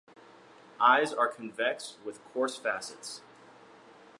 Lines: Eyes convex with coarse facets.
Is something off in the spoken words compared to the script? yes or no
yes